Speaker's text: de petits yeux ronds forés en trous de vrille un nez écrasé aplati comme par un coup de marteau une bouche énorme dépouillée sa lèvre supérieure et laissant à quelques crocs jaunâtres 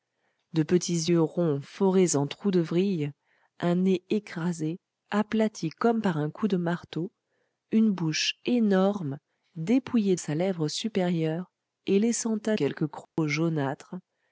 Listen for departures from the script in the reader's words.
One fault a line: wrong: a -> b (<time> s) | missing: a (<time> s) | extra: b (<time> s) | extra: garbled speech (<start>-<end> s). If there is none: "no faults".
no faults